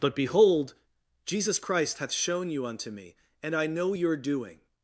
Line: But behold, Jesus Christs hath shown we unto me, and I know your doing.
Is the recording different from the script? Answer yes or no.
yes